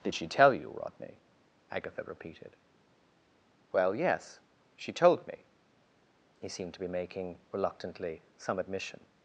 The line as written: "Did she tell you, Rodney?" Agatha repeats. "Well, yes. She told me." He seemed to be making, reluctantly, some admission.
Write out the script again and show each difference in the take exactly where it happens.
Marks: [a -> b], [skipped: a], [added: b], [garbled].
"Did she tell you, Rodney?" Agatha [repeats. -> repeated] "Well, yes. She told me." He seemed to be making, reluctantly, some admission.